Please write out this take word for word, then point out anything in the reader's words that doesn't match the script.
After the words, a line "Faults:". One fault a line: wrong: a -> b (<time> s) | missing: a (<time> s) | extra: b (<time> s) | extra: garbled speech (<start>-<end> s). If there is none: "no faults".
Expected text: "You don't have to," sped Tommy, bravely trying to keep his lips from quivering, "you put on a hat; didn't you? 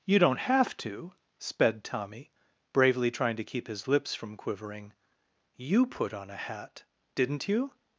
"You don't have to," sped Tommy, bravely trying to keep his lips from quivering, "you put on a hat; didn't you?
Faults:
no faults